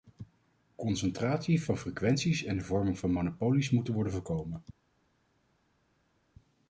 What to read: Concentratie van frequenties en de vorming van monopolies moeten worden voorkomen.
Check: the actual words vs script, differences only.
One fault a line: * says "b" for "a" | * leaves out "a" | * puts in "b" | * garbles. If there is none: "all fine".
all fine